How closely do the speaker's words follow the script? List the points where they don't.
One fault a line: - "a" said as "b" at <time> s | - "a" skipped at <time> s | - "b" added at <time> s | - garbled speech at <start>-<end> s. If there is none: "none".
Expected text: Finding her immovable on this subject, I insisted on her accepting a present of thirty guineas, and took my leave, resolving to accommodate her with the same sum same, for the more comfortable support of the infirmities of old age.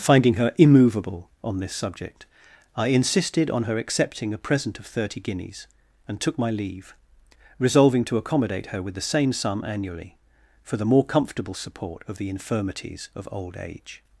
- "same" said as "annually" at 9.6 s